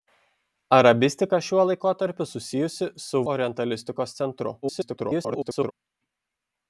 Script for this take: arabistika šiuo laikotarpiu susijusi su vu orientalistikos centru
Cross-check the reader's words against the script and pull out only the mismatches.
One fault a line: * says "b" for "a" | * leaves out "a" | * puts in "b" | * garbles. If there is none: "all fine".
* leaves out "vu"
* garbles